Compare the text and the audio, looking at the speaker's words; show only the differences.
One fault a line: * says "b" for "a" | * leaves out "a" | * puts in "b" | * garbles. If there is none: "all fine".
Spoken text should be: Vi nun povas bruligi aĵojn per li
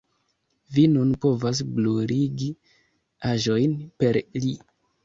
all fine